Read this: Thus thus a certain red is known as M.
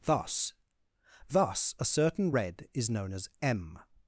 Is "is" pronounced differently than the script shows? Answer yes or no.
no